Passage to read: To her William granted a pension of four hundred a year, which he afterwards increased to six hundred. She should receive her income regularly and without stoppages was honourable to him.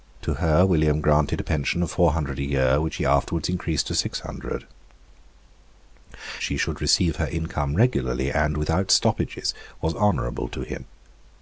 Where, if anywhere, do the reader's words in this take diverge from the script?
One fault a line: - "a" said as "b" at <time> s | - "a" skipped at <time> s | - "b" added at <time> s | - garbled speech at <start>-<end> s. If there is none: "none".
none